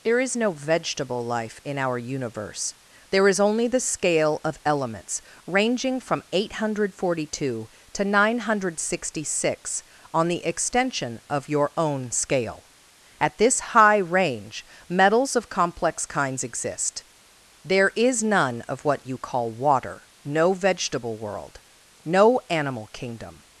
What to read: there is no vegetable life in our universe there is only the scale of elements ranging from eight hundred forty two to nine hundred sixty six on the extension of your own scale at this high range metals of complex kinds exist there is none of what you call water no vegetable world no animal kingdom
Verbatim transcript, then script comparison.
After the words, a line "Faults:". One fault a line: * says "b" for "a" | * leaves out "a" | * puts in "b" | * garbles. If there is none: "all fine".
there is no vegetable life in our universe there is only the scale of elements ranging from eight hundred forty two to nine hundred sixty six on the extension of your own scale at this high range metals of complex kinds exist there is none of what you call water no vegetable world no animal kingdom
Faults:
all fine